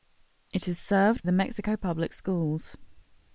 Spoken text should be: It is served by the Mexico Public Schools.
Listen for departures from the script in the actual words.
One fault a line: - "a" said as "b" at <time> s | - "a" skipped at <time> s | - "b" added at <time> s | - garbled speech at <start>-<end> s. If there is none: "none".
- "by" skipped at 1.2 s